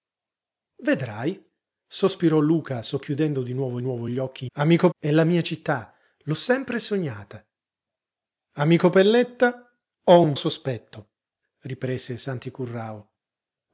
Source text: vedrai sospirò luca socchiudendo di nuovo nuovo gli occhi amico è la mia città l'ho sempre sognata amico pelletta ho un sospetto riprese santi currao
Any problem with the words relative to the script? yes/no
no